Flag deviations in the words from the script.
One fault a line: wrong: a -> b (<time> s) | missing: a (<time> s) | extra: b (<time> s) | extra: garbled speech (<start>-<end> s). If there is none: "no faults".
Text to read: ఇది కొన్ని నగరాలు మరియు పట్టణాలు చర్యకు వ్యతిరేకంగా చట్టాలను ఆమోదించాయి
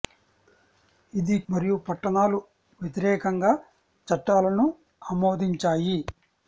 missing: కొన్ని నగరాలు (1.4 s)
missing: చర్యకు (2.4 s)